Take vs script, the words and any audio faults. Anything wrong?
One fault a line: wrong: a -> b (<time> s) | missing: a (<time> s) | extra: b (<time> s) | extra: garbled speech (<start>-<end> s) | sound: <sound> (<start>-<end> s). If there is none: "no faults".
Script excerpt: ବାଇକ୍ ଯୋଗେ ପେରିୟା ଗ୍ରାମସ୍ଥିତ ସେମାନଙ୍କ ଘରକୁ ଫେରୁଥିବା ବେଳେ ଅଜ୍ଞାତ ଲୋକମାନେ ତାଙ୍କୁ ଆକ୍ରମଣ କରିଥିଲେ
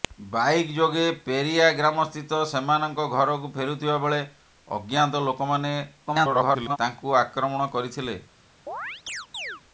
extra: garbled speech (6.1-6.8 s)
sound: chirp (8.7-9.6 s)